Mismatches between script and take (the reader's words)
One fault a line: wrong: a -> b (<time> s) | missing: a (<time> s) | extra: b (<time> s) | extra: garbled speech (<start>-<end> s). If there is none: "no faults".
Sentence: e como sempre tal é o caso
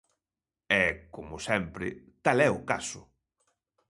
no faults